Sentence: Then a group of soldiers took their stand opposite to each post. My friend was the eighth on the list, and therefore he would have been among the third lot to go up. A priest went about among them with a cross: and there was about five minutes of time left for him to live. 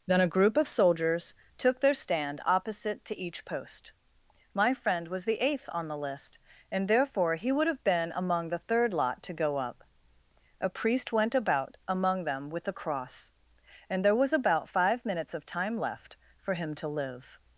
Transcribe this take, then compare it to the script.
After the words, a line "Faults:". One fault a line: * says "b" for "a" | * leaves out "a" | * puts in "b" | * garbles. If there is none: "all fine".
Then a group of soldiers took their stand opposite to each post. My friend was the eighth on the list, and therefore he would have been among the third lot to go up. A priest went about among them with a cross: and there was about five minutes of time left for him to live.
Faults:
all fine